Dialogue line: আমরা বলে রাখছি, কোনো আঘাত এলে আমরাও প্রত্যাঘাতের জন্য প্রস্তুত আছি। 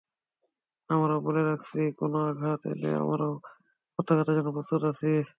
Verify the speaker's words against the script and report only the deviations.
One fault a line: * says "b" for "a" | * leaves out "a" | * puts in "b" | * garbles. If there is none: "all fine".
all fine